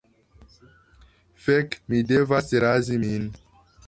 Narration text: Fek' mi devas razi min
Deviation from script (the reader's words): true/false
false